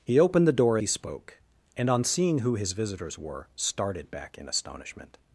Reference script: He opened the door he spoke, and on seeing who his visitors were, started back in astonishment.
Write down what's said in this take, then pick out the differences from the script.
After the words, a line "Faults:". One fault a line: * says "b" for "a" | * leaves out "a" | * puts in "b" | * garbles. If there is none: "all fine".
He opened the door he spoke, and on seeing who his visitors were, started back in astonishment.
Faults:
all fine